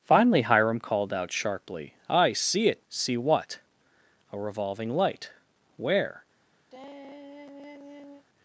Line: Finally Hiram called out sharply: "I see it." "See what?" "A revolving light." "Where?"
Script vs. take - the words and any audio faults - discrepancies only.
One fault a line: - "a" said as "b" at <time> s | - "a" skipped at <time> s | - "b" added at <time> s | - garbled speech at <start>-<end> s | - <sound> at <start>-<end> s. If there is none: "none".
- sigh at 6.7-8.2 s